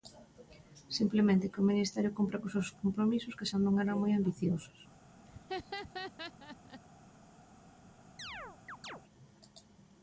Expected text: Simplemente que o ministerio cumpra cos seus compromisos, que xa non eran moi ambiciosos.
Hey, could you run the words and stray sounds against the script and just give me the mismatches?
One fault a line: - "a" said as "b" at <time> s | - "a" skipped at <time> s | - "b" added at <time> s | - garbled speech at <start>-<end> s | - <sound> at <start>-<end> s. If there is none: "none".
- laugh at 5.3-6.8 s
- chirp at 8.2-9.0 s